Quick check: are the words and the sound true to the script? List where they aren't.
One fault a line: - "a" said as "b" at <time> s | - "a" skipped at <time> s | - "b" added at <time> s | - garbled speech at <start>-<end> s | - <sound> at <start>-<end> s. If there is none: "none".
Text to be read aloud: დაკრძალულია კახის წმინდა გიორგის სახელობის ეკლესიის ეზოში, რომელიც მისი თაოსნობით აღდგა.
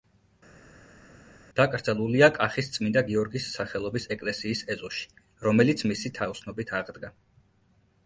none